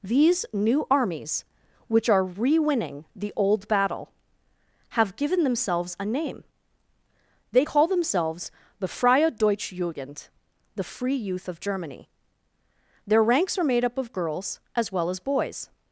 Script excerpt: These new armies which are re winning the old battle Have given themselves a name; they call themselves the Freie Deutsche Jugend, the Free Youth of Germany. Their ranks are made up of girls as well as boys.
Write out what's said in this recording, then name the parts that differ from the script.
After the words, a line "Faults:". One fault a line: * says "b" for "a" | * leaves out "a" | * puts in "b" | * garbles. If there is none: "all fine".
These new armies which are re winning the old battle Have given themselves a name; they call themselves the Freie Deutsche Jugend, the Free Youth of Germany. Their ranks are made up of girls as well as boys.
Faults:
all fine